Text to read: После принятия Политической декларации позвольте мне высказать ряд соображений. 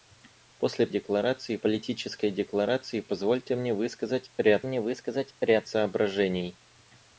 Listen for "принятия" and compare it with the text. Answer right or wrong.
wrong